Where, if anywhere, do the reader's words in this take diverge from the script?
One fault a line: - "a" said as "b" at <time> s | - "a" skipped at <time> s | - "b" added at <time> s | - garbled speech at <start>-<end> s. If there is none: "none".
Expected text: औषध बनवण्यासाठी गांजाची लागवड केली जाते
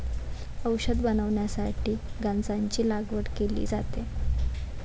none